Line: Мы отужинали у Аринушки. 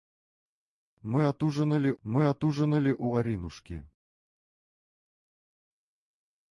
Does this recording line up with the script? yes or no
no